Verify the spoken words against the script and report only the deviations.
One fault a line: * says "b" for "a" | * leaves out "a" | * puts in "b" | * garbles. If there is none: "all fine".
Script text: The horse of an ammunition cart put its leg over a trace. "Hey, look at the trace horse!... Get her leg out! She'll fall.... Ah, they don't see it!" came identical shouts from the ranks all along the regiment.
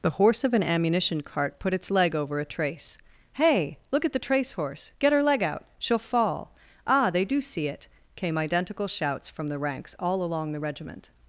* says "do" for "don't"